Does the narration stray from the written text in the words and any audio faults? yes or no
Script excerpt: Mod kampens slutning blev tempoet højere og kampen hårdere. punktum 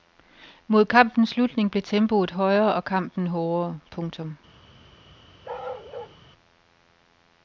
yes